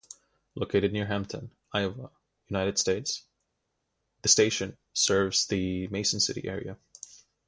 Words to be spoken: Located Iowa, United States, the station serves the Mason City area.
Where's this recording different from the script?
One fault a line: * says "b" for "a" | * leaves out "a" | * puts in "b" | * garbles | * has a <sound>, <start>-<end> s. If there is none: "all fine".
* puts in "near Hampton"